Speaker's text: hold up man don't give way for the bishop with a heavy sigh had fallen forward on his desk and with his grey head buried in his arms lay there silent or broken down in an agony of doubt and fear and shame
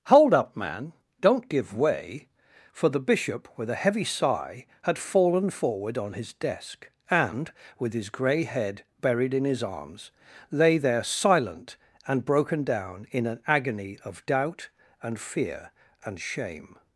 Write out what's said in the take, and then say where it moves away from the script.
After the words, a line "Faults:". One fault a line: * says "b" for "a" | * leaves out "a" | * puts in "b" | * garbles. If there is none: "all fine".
hold up man don't give way for the bishop with a heavy sigh had fallen forward on his desk and with his grey head buried in his arms lay there silent and broken down in an agony of doubt and fear and shame
Faults:
* says "and" for "or"